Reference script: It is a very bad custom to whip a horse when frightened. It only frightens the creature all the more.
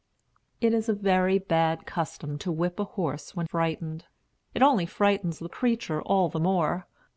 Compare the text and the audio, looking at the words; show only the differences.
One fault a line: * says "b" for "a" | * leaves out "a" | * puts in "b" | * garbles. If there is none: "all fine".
all fine